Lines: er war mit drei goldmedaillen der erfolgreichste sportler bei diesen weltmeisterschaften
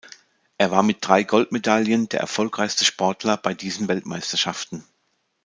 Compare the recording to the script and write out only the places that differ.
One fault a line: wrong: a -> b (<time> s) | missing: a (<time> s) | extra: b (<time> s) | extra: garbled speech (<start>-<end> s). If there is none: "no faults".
no faults